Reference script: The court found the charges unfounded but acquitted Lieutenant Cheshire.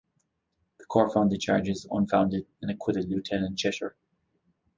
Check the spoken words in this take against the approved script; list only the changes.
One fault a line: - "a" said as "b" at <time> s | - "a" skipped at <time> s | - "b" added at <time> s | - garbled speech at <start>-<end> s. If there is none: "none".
- "but" said as "and" at 2.6 s